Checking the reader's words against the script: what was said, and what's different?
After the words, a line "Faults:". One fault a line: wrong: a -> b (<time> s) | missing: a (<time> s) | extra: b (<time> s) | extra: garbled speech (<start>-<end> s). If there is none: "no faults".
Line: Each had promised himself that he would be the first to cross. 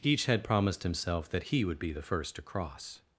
Each had promised himself that he would be the first to cross.
Faults:
no faults